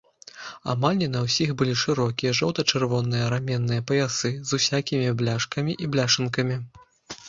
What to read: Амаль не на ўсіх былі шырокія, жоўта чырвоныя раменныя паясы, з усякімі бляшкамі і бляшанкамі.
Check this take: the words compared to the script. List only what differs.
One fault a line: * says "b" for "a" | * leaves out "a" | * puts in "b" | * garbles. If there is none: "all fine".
all fine